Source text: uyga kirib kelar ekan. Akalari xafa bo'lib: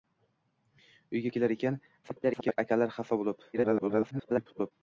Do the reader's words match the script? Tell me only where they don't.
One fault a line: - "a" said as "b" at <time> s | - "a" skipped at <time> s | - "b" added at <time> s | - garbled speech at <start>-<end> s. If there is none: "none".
- "kirib" skipped at 1.3 s
- garbled speech at 2.0-2.6 s
- garbled speech at 3.5-4.7 s